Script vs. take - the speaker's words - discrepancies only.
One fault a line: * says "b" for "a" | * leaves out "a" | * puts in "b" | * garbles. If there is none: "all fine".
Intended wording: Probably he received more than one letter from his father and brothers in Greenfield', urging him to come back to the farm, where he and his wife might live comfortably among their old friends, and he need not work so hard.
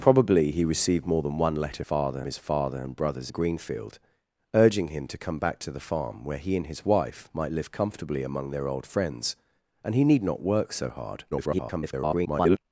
* says "father" for "from"
* leaves out "in"
* garbles